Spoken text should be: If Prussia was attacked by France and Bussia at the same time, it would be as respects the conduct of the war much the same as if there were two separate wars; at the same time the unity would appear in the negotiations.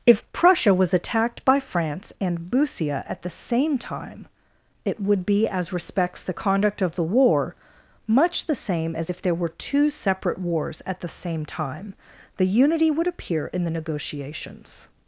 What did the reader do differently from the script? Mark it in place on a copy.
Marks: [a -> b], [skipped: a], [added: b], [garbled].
If Prussia was attacked by France and Bussia at the same time, it would be as respects the conduct of the war much the same as if there were two separate wars; at the same time the unity would appear in the negotiations.